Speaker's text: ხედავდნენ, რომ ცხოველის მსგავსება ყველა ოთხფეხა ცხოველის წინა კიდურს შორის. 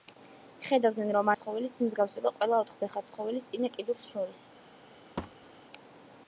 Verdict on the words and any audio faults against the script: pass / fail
fail